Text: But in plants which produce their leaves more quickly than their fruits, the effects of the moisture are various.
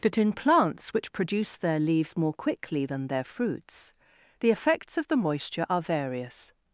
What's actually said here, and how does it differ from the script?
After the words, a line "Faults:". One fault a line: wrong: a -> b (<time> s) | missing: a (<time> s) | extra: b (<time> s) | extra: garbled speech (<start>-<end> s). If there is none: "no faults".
But in plants which produce their leaves more quickly than their fruits, the effects of the moisture are various.
Faults:
no faults